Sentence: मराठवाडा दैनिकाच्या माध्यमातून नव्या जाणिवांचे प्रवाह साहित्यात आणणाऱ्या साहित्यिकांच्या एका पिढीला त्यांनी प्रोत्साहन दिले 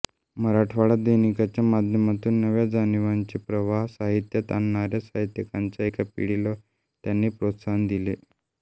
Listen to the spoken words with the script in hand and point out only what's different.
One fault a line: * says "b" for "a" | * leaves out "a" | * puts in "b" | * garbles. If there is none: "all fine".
all fine